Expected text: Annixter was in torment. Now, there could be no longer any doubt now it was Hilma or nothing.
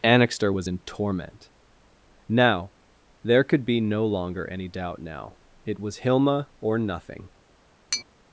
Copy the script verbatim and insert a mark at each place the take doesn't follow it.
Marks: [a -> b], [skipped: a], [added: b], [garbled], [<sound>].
Annixter was in torment. Now, there could be no longer any doubt now it was Hilma or nothing. [tap]